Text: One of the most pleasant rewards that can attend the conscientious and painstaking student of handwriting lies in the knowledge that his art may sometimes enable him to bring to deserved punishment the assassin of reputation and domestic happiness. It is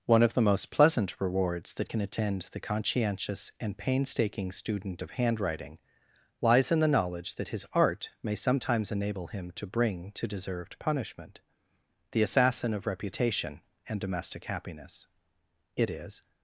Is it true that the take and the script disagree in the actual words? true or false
false